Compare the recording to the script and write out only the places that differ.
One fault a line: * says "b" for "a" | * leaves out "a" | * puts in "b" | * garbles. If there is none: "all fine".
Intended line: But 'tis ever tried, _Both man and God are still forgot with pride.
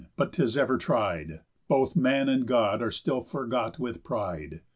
all fine